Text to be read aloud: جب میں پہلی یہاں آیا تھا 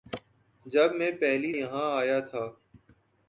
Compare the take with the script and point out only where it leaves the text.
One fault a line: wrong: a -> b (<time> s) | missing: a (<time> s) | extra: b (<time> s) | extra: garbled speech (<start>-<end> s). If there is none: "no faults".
no faults